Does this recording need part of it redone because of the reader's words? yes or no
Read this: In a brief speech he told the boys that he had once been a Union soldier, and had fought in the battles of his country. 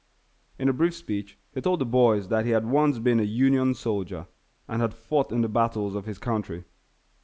no